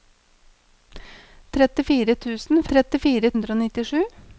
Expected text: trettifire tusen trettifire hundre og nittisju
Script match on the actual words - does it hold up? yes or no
yes